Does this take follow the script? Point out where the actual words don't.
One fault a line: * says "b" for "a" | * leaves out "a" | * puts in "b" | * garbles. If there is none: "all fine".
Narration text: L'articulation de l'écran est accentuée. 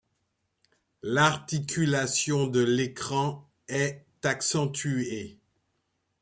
all fine